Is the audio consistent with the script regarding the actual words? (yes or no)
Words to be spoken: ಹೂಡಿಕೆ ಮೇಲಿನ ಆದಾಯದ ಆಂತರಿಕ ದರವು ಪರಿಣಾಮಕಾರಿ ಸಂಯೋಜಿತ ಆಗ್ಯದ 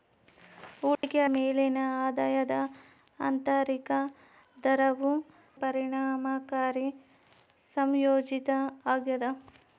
yes